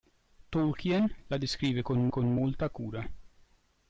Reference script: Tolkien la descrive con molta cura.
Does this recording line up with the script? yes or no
no